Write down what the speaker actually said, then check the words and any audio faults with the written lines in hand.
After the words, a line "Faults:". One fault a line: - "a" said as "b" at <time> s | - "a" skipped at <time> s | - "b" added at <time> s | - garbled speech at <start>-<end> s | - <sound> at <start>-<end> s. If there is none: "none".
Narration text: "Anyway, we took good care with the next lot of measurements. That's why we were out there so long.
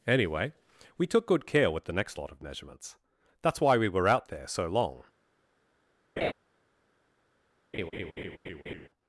"Anyway, we took good care with the next lot of measurements. That's why we were out there so long.
Faults:
- laugh at 6.2-6.3 s
- laugh at 7.7-8.9 s